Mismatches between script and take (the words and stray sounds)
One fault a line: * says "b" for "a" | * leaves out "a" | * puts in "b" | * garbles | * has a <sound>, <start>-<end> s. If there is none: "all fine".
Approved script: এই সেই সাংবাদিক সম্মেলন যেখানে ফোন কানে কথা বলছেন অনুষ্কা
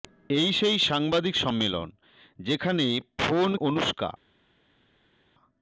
* leaves out "কানে কথা বলছেন"